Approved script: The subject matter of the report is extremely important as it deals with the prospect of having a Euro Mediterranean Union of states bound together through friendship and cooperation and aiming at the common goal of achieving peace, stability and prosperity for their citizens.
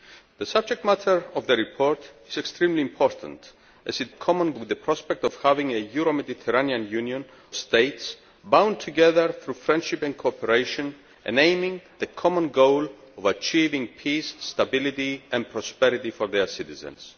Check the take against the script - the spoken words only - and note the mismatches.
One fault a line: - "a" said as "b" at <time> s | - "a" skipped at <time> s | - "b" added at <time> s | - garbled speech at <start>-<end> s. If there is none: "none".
- "deals" said as "common" at 4.1 s
- "of" skipped at 7.2 s
- "at" skipped at 11.8 s